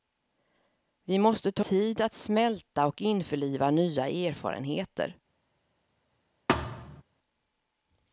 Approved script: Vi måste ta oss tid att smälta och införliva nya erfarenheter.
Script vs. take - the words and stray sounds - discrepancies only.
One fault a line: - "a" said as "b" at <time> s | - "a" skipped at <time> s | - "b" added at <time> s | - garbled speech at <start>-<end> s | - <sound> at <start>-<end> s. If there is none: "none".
- "oss" skipped at 1.6 s
- thud at 6.5-7.0 s